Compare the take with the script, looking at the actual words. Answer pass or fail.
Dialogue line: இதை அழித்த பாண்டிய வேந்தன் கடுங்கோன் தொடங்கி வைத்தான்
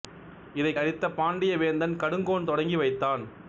pass